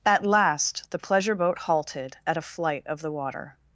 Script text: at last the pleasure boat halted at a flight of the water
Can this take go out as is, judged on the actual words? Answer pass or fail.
pass